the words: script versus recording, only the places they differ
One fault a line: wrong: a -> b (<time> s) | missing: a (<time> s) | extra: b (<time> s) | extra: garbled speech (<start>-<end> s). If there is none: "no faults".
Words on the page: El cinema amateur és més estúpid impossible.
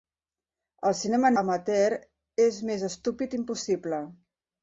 no faults